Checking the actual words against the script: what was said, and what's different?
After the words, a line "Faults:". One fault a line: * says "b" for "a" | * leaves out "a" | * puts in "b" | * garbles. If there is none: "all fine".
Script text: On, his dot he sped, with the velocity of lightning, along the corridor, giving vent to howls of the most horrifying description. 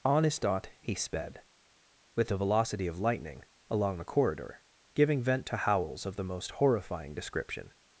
On, his dot he sped, with the velocity of lightning, along the corridor, giving vent to howls of the most horrifying description.
Faults:
all fine